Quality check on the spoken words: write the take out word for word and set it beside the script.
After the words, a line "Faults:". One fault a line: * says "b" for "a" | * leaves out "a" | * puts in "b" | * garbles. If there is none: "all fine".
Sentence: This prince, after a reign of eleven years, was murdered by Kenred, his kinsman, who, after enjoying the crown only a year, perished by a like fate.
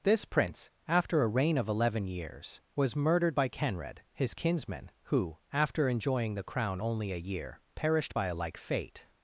This prince, after a reign of eleven years, was murdered by Kenred, his kinsman, who, after enjoying the crown only a year, perished by a like fate.
Faults:
all fine